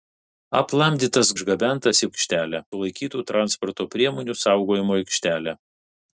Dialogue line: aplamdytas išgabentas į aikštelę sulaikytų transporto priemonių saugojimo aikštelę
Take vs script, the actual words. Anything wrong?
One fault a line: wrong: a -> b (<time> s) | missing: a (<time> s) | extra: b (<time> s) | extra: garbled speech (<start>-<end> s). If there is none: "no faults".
no faults